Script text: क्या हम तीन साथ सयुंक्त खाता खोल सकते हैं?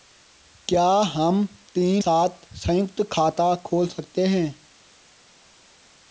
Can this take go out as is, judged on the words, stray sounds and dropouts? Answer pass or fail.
pass